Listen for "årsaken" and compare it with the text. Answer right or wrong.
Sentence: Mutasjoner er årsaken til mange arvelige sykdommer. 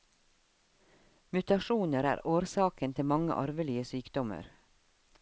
right